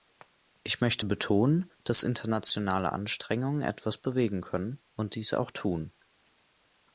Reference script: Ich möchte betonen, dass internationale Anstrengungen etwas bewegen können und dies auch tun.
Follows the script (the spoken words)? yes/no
yes